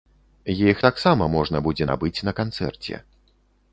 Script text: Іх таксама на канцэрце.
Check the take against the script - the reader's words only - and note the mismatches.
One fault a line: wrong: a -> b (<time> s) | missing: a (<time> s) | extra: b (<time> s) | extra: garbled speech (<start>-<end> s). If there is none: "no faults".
extra: можна будзе набыць (1.4 s)